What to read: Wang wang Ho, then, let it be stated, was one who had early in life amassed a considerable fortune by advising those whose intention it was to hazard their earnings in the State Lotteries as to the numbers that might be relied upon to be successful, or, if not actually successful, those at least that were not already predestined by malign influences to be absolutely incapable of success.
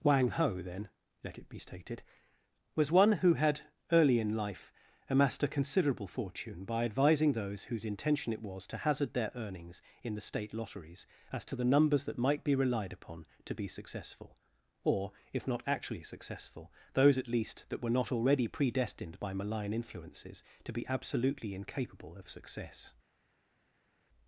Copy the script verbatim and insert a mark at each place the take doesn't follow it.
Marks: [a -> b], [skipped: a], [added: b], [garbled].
Wang [skipped: wang] Ho, then, let it be stated, was one who had early in life amassed a considerable fortune by advising those whose intention it was to hazard their earnings in the State Lotteries as to the numbers that might be relied upon to be successful, or, if not actually successful, those at least that were not already predestined by malign influences to be absolutely incapable of success.